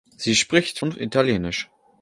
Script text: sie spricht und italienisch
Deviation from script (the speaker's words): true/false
false